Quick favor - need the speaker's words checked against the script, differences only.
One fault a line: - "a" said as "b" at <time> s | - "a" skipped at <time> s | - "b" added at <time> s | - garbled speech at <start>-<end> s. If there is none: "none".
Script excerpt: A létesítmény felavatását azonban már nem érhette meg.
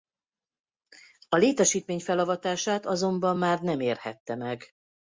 none